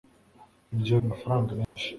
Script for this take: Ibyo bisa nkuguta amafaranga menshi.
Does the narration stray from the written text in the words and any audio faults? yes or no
yes